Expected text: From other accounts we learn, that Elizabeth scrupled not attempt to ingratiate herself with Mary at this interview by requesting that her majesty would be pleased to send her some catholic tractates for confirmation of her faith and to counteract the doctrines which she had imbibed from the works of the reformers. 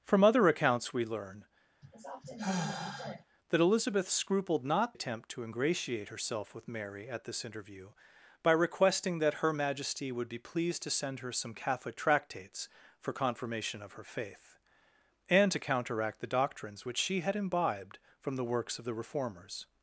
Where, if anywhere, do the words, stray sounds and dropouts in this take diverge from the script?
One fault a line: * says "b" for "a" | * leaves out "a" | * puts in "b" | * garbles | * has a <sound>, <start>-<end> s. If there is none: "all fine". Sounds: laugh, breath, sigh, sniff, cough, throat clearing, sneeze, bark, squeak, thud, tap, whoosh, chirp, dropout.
* has a sigh, 1.8-3.2 s